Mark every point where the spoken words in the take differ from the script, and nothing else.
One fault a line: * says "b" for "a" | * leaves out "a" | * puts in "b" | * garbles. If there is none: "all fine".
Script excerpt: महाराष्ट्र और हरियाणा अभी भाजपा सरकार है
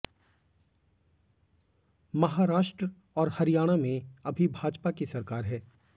* puts in "में"
* puts in "की"